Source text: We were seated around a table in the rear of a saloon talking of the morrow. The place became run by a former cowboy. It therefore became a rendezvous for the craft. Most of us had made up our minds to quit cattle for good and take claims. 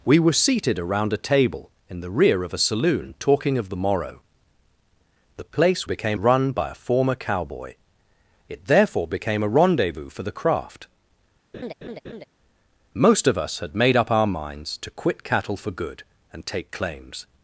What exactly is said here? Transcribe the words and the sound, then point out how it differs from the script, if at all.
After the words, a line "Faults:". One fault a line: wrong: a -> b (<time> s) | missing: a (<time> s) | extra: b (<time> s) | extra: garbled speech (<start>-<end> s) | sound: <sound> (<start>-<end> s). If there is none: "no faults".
We were seated around a table in the rear of a saloon talking of the morrow. The place became run by a former cowboy. It therefore became a rendezvous for the craft. Most of us had made up our minds to quit cattle for good and take claims.
Faults:
sound: laugh (11.5-12.2 s)